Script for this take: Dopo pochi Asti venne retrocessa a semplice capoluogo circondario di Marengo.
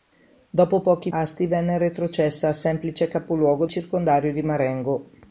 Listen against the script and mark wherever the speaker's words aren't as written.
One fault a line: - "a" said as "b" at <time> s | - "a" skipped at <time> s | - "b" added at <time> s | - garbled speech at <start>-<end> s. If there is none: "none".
none